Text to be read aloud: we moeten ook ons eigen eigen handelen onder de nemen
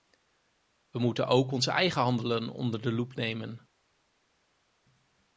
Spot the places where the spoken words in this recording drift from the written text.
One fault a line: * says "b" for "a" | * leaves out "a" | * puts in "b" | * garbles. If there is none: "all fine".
* leaves out "eigen"
* puts in "loep"